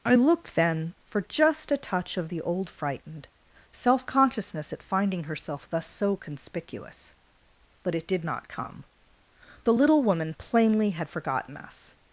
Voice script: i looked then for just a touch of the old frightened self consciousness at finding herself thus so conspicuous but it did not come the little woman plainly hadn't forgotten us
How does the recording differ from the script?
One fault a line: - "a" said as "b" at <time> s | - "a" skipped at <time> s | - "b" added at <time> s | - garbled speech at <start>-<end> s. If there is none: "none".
- "hadn't" said as "had" at 10.9 s